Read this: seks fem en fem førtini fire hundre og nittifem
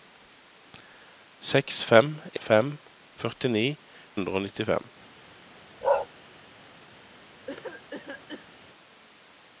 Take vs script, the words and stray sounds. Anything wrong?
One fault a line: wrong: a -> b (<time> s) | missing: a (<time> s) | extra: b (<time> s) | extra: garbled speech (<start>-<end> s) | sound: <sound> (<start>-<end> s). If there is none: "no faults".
missing: en (2.1 s)
missing: fire (3.6 s)
sound: bark (5.8-6.1 s)
sound: cough (7.5-8.5 s)